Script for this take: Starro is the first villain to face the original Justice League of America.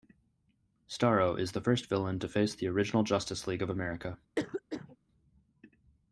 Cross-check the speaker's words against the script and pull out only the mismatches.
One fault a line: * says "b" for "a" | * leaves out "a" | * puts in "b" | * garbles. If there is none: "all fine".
all fine